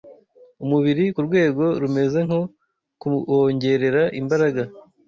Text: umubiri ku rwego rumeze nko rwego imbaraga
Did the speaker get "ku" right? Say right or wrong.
right